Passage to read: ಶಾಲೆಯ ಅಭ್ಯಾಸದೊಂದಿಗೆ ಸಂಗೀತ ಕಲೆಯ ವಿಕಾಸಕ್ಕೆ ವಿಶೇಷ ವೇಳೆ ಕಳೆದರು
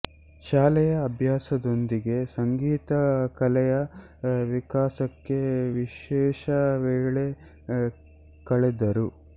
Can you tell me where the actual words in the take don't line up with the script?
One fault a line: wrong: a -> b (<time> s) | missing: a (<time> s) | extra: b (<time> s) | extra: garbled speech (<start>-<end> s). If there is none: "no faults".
no faults